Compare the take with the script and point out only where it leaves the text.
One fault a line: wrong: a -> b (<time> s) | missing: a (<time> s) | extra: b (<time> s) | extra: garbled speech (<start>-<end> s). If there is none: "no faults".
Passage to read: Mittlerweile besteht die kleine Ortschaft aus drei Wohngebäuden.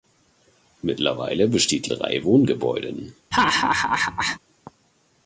missing: kleine Ortschaft aus (1.9 s)